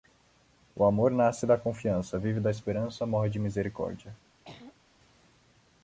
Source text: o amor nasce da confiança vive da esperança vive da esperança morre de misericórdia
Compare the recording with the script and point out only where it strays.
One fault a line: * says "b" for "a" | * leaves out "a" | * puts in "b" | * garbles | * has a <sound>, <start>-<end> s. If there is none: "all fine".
* leaves out "vive da esperança"
* has a throat clearing, 4.4-4.8 s